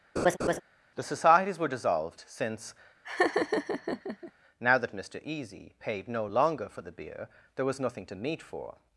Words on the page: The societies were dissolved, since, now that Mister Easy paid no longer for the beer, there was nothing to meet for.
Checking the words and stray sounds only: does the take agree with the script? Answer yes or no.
no